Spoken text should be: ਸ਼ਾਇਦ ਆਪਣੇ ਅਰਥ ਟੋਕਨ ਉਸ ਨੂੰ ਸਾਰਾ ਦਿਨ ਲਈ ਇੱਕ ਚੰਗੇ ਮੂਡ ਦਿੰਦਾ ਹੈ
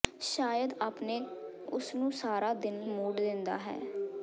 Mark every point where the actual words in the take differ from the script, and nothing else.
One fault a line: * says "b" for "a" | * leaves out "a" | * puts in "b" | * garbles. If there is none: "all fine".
* leaves out "ਅਰਥ ਟੋਕਨ"
* leaves out "ਲਈ ਇੱਕ ਚੰਗੇ"